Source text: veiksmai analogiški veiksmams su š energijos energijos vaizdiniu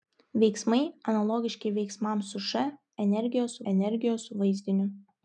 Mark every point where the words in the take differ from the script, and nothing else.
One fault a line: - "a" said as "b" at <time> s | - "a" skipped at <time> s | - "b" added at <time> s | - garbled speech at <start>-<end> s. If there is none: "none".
none